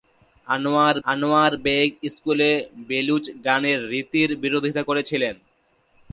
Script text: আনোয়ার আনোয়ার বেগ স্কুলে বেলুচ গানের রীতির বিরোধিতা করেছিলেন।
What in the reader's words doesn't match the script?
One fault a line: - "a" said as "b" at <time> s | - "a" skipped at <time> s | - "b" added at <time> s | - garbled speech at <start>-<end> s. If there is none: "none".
none